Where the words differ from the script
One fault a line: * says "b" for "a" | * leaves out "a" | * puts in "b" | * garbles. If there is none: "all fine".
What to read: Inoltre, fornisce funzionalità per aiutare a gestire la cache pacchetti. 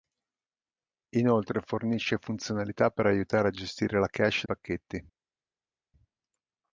all fine